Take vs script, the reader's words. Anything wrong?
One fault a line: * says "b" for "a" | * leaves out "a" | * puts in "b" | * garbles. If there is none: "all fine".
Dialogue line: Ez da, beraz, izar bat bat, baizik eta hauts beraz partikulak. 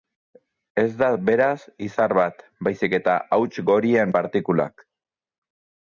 * leaves out "bat"
* says "gorien" for "beraz"